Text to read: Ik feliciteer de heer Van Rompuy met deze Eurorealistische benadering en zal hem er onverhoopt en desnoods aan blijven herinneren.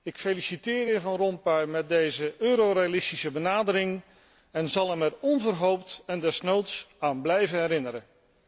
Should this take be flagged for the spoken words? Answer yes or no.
no